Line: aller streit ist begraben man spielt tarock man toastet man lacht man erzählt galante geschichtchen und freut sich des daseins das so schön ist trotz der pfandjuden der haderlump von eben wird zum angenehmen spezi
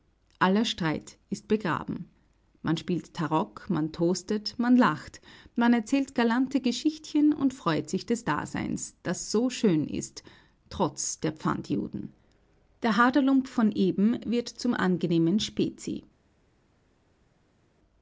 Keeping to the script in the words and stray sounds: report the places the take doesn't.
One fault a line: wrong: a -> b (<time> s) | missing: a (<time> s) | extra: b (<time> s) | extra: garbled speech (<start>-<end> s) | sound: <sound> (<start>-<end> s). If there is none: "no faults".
no faults